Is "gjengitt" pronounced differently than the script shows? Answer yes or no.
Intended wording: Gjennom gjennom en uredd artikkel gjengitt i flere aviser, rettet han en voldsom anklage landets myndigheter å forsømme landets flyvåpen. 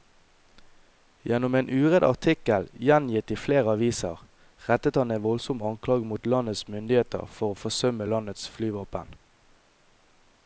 no